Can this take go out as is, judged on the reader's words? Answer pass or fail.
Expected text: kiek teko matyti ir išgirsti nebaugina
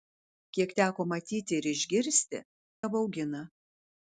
pass